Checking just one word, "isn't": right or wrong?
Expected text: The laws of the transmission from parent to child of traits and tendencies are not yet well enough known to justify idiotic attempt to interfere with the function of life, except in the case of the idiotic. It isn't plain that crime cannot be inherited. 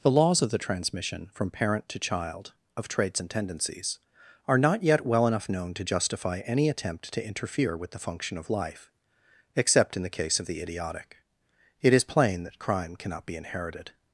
wrong